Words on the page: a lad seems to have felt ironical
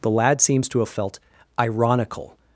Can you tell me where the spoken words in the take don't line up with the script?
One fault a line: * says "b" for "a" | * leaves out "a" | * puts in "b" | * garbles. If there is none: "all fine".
* says "the" for "a"